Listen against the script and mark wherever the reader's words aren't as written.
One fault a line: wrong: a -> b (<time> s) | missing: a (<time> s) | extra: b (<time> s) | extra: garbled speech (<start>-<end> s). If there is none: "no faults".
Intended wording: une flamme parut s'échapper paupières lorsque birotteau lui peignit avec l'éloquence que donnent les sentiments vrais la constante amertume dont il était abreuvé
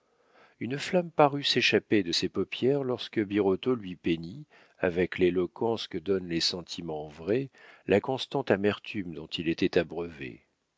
extra: de ses (2.0 s)